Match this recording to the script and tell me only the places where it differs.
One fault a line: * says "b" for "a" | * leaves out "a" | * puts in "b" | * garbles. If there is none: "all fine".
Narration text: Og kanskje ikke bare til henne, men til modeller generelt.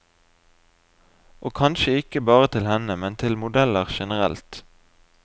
all fine